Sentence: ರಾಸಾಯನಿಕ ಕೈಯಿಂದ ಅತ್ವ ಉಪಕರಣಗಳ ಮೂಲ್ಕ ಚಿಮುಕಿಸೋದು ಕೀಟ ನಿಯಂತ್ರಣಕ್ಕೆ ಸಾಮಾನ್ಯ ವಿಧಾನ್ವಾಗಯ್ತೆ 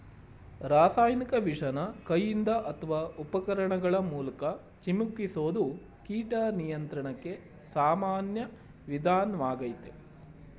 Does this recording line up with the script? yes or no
no